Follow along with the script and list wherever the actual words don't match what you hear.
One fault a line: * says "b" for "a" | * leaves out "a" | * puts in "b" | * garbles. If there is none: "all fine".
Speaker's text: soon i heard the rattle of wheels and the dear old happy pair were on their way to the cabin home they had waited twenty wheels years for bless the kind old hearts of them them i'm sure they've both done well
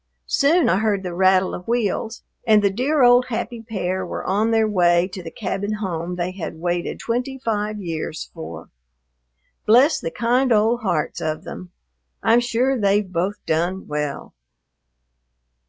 * says "five" for "wheels"
* leaves out "them"